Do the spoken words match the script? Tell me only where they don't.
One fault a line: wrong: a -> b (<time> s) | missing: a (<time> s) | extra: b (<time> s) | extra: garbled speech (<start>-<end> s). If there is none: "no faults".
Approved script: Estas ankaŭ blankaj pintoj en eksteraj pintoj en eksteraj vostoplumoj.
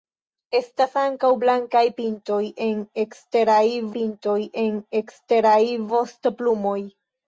no faults